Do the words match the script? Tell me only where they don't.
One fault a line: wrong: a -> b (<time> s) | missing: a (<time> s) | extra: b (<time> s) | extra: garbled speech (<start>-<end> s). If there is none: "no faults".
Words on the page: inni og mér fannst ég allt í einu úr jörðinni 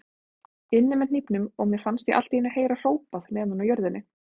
extra: með hnífnum (1.0 s)
extra: heyra hrópað neðan (2.6 s)